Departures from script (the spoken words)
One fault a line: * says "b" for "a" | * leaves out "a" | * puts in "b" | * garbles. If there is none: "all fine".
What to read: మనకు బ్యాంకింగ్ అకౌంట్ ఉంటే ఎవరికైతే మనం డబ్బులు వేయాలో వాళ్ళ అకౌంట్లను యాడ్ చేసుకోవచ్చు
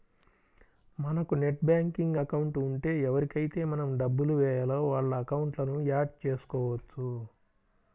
* puts in "నెట్"